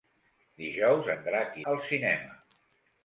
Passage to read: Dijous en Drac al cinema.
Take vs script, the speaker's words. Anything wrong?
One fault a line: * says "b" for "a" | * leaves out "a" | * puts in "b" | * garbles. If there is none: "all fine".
all fine